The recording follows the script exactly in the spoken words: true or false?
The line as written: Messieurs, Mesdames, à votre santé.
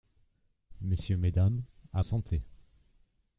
false